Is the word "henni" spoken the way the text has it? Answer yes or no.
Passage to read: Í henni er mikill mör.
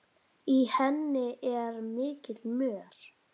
yes